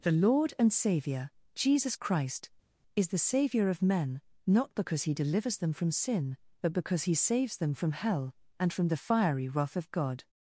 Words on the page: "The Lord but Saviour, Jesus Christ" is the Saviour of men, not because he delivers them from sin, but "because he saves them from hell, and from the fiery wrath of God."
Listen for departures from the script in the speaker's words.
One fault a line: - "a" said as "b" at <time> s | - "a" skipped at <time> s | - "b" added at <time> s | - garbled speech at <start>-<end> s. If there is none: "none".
- "but" said as "and" at 0.6 s